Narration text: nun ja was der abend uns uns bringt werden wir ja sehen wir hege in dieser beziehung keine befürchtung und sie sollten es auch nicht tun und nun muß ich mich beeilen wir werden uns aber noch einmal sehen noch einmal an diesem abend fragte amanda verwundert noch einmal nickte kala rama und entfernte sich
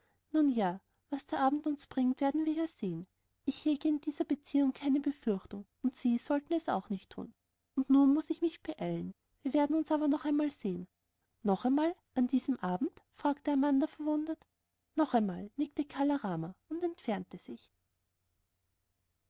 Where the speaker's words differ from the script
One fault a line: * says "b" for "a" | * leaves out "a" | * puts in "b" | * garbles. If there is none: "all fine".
* leaves out "uns"
* says "ich" for "wir"